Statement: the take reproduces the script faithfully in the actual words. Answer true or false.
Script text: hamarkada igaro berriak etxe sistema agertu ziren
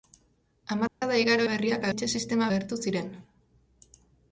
true